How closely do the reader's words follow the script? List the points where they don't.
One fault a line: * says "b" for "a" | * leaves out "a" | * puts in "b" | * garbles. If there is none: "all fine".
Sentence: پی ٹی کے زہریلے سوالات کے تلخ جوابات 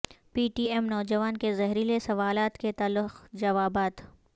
* puts in "ایم نوجوان"